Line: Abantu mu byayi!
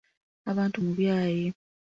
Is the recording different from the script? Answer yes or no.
no